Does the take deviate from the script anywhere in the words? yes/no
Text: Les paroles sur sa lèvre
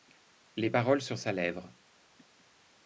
no